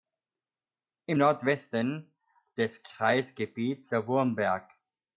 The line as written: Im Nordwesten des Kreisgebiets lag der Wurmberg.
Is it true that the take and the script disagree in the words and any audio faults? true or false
true